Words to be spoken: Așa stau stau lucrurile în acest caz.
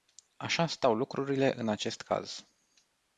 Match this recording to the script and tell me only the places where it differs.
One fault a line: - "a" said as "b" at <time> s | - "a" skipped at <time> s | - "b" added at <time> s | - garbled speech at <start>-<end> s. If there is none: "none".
- "stau" skipped at 0.9 s